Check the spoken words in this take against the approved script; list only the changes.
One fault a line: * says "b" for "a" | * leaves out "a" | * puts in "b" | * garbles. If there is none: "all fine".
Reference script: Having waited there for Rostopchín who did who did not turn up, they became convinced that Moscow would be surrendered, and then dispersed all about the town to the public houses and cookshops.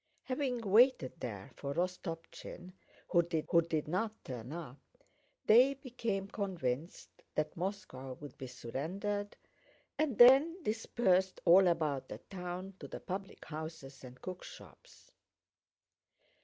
all fine